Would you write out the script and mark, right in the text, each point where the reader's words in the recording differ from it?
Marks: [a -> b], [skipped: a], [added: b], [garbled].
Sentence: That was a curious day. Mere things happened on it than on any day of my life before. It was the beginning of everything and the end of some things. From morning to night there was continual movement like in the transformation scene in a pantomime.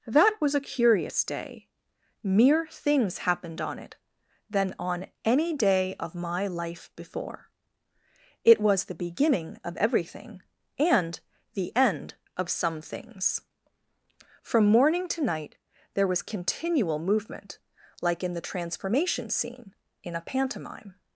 That was a curious day. Mere things happened on it than on any day of my life before. It was the beginning of everything and the end of some things. From morning to night there was continual movement like in the transformation scene in a pantomime.